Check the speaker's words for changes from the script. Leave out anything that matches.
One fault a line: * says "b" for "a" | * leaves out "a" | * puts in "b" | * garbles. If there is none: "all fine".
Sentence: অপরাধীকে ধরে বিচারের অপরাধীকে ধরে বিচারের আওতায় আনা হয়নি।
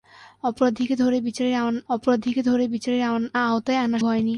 all fine